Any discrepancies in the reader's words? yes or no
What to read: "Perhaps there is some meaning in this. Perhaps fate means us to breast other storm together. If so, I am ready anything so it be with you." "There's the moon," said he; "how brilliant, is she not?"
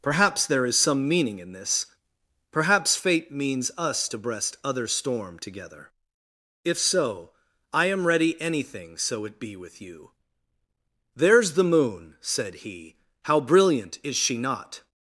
no